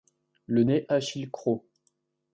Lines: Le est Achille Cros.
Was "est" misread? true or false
false